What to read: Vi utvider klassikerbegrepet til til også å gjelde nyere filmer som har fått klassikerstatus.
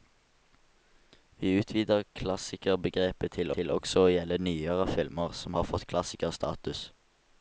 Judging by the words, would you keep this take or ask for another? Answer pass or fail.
pass